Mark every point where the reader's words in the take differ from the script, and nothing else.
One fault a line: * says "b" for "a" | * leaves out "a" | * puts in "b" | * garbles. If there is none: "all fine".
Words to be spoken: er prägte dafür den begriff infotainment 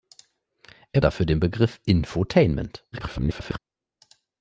* leaves out "prägte"
* garbles